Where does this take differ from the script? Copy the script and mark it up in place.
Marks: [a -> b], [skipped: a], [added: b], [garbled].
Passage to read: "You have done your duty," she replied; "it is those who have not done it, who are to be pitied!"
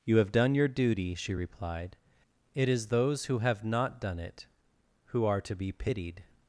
"You have done your duty," she replied; "it is those who have not done it, who are to be pitied!"